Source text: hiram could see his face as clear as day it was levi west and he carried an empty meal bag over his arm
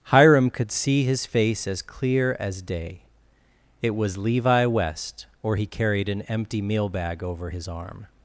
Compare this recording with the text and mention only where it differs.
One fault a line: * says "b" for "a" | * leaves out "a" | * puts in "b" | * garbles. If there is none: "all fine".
* says "or" for "and"